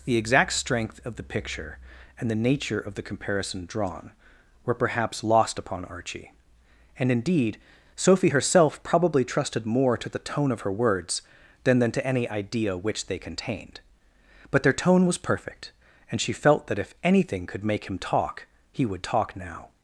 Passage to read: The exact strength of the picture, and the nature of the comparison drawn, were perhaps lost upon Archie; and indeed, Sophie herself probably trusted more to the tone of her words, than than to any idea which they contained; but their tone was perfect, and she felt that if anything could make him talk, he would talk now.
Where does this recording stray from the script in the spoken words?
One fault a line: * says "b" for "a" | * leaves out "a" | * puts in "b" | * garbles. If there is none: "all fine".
all fine